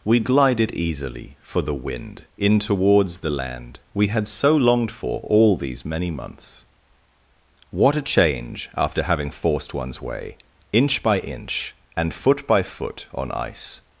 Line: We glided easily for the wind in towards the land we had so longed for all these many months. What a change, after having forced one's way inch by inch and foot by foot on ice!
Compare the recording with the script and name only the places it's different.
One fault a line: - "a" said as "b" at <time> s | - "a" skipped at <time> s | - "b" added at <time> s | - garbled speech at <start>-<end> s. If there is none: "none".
none